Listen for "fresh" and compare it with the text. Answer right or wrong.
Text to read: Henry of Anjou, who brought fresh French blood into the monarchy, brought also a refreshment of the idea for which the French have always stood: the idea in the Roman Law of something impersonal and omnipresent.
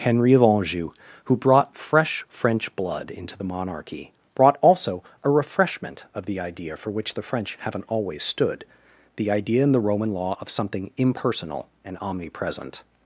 right